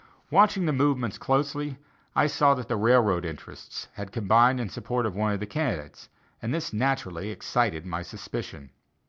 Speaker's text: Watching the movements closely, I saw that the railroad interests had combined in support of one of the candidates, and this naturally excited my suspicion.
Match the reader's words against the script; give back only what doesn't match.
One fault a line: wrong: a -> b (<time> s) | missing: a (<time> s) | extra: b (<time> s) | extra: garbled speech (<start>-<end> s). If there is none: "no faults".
no faults